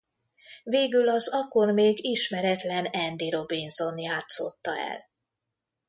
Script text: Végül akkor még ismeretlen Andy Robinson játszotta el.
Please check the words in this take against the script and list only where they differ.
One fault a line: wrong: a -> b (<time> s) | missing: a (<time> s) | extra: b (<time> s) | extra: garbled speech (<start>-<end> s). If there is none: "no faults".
extra: az (1.1 s)